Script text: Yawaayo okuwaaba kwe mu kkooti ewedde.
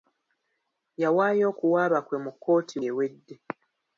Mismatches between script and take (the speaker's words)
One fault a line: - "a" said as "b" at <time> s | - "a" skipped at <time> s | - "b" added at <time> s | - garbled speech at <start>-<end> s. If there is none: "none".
none